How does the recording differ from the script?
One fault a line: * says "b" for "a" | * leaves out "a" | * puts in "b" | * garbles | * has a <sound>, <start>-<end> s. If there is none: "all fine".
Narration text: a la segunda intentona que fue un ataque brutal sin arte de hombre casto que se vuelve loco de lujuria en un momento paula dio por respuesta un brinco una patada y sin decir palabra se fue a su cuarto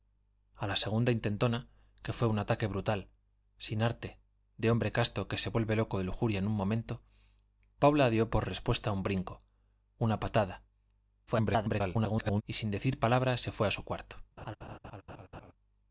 * garbles
* has a laugh, 14.4-15.5 s